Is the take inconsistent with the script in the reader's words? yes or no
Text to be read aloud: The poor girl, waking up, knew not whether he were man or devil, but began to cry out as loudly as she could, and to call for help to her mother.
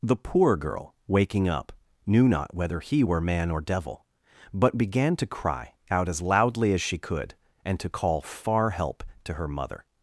yes